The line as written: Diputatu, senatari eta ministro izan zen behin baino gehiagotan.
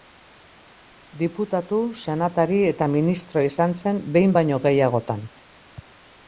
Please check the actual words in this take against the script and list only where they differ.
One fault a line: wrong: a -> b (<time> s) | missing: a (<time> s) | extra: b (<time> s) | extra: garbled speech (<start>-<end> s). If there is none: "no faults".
no faults